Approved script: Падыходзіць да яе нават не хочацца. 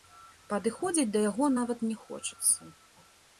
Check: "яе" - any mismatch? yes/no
yes